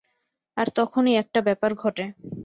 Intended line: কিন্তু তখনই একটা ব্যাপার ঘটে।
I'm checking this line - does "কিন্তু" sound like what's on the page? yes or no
no